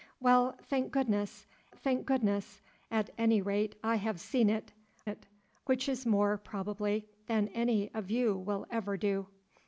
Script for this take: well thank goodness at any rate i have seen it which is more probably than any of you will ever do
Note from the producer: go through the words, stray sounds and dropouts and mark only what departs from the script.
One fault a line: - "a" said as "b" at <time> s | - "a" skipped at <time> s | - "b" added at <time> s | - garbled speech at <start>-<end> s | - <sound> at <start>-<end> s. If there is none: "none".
- "thank goodness" added at 1.8 s
- "it" added at 5.0 s